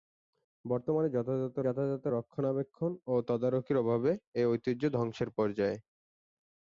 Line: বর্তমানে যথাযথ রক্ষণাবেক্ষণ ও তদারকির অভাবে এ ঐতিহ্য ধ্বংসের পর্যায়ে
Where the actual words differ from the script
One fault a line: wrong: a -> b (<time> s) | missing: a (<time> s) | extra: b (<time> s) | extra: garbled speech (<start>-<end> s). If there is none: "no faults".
extra: যথাযথ (1.6 s)